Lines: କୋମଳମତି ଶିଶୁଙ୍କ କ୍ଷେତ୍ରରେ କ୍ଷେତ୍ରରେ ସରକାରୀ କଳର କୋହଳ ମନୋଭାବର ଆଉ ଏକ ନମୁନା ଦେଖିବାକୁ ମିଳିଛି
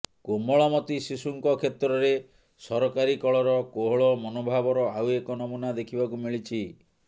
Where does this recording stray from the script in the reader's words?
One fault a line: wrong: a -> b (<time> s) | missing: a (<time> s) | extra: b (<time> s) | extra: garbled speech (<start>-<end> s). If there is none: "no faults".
missing: କ୍ଷେତ୍ରରେ (2.1 s)